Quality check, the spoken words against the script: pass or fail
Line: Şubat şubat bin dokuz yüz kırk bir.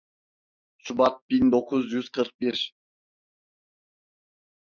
fail